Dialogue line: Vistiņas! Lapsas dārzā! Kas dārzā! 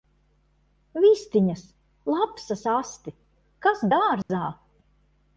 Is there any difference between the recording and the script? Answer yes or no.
yes